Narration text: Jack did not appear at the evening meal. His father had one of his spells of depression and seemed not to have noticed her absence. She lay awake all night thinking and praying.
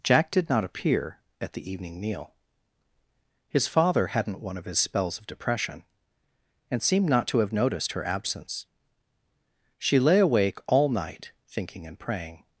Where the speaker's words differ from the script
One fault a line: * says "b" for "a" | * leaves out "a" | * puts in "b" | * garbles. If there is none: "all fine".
* says "hadn't" for "had"